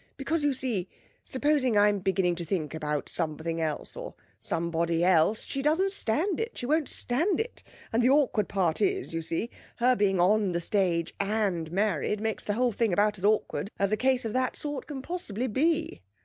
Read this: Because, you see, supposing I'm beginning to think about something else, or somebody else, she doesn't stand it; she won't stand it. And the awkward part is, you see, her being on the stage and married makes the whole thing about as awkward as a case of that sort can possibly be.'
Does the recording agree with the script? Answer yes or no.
yes